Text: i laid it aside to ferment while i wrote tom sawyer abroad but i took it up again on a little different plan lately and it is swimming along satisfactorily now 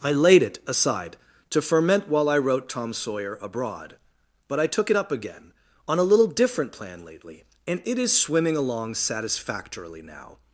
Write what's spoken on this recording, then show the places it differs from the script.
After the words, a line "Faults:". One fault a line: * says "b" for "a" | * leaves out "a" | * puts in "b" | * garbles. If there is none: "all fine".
i laid it aside to ferment while i wrote tom sawyer abroad but i took it up again on a little different plan lately and it is swimming along satisfactorily now
Faults:
all fine